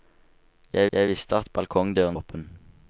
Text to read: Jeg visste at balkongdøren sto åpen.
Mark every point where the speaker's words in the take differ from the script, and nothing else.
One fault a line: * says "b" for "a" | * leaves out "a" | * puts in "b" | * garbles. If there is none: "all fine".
* puts in "jeg"
* leaves out "sto"